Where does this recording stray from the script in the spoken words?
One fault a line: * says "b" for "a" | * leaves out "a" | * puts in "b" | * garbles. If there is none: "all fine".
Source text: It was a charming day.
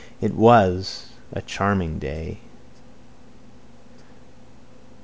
all fine